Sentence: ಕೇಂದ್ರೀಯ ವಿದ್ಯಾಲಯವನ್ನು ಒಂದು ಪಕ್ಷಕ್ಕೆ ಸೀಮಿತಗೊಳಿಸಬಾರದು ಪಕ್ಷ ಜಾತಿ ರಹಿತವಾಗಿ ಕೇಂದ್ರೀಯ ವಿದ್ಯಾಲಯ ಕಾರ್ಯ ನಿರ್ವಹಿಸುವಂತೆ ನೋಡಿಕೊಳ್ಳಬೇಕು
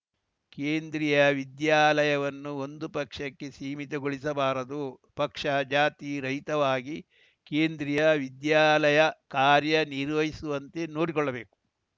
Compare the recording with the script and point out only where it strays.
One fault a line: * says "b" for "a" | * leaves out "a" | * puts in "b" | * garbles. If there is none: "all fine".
all fine